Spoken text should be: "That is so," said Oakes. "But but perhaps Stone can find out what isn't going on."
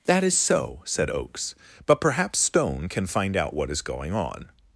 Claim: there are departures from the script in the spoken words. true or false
true